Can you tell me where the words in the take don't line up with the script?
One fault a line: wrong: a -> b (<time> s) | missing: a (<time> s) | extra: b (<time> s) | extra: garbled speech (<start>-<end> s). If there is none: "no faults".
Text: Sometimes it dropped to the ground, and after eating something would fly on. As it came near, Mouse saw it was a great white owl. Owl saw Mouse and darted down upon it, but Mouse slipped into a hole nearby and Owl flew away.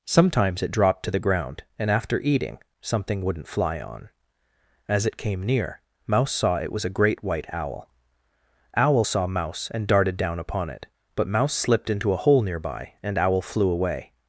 wrong: would -> wouldn't (3.2 s)